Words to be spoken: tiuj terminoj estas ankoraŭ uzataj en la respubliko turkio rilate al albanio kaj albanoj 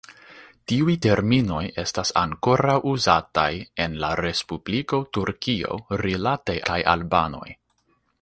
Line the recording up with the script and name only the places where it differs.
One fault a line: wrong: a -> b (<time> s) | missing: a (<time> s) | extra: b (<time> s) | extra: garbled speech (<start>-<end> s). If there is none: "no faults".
missing: al albanio (6.6 s)